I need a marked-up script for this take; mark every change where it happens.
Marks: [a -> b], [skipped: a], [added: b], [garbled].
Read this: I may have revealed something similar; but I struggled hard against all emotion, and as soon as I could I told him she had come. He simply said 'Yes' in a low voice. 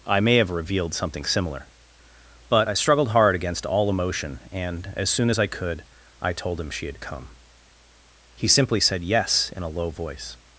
I may have revealed something similar; but I struggled hard against all emotion, and as soon as I could I told him she had come. He simply said 'Yes' in a low voice.